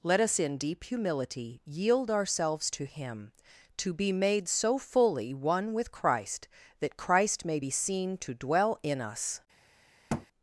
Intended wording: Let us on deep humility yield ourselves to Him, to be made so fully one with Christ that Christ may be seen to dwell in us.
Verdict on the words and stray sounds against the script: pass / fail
fail